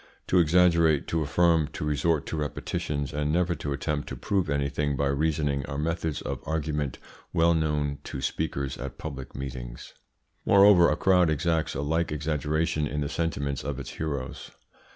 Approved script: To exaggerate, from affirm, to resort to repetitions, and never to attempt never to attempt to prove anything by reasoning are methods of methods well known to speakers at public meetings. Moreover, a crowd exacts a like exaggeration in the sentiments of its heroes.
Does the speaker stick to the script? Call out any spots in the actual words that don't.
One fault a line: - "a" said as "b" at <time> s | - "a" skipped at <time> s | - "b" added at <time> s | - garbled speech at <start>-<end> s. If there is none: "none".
- "from" said as "to" at 1.1 s
- "never" skipped at 4.1 s
- "attempt to" skipped at 4.2 s
- "methods" said as "argument" at 6.4 s